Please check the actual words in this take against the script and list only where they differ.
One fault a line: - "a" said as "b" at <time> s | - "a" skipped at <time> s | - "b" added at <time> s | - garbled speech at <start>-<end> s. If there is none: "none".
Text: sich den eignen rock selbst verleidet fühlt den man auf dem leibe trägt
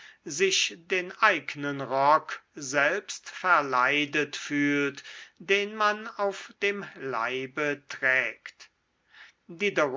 none